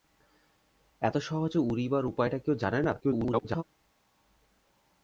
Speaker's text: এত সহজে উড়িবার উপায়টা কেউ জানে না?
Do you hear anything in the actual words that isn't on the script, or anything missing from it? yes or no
yes